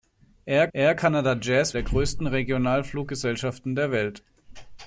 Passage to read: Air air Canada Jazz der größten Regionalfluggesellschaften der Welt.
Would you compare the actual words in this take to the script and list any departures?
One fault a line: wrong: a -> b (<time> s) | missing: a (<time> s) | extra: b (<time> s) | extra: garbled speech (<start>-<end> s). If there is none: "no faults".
no faults